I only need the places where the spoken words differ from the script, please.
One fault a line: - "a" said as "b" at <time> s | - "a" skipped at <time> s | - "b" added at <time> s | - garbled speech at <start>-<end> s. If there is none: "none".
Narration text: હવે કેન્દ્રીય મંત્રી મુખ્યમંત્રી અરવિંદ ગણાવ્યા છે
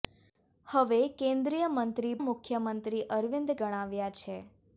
none